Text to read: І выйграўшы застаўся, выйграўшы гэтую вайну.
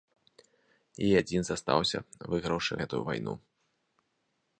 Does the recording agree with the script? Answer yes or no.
no